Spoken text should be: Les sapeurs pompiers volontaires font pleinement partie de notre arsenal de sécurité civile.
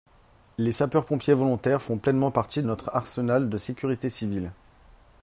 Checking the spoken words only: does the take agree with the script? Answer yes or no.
no